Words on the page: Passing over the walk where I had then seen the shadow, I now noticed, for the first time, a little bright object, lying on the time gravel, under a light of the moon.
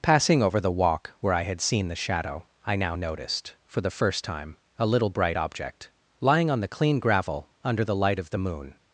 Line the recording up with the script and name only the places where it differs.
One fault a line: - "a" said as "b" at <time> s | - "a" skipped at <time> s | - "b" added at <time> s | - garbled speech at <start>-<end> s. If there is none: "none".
- "then" skipped at 1.6 s
- "time" said as "clean" at 6.7 s
- "a" said as "the" at 7.8 s